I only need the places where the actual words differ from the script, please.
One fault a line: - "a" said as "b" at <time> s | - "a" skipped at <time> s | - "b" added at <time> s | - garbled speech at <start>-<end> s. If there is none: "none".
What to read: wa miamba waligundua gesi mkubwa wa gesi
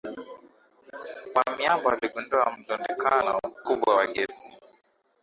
- "gesi" said as "mlundikano" at 2.6 s